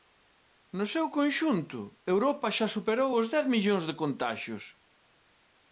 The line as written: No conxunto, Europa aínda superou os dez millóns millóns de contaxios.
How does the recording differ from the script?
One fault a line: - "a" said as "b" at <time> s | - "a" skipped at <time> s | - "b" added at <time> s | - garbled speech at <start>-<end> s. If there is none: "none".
- "seu" added at 0.9 s
- "aínda" said as "xa" at 2.6 s
- "millóns" skipped at 3.8 s